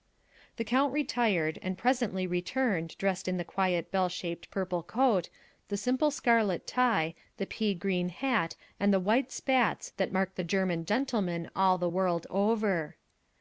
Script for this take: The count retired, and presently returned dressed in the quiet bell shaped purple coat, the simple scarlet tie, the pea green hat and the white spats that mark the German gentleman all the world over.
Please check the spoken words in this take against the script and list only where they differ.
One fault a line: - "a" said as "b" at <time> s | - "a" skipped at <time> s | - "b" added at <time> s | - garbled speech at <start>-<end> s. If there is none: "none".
none